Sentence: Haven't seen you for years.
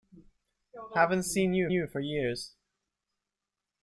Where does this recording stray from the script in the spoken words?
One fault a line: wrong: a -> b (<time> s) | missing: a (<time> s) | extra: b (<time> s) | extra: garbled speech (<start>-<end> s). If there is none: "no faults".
extra: you (1.7 s)